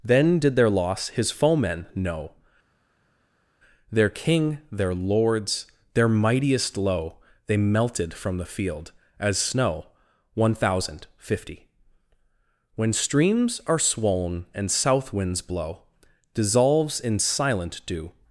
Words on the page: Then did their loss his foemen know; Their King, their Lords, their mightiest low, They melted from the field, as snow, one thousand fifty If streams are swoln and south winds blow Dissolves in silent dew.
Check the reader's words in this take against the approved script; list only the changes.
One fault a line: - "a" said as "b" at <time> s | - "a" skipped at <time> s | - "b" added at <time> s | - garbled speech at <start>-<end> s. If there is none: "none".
- "If" said as "When" at 12.8 s